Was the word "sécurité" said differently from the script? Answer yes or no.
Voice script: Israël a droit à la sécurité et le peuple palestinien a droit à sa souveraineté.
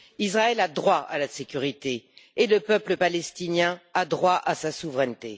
no